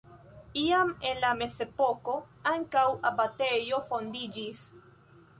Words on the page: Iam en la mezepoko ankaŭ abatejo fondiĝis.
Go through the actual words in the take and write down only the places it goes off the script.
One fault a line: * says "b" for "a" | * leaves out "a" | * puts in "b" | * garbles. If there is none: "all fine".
all fine